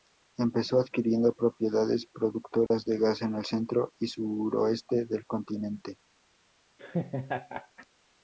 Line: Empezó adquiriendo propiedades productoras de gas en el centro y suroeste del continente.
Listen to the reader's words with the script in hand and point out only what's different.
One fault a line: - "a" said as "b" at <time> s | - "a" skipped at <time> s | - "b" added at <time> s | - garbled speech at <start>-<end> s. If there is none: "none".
none